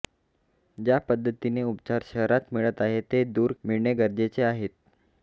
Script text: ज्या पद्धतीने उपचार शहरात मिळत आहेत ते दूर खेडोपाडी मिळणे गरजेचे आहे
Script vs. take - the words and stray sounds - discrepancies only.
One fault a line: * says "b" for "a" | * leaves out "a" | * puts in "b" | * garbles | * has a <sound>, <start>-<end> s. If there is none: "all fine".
* leaves out "खेडोपाडी"